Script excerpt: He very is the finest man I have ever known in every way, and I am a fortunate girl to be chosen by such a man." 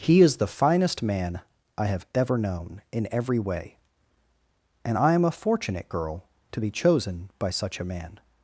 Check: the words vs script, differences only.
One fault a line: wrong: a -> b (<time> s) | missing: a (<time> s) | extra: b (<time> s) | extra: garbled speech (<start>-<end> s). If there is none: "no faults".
missing: very (0.2 s)